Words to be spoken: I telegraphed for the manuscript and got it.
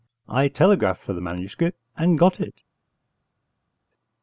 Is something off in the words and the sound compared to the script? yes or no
no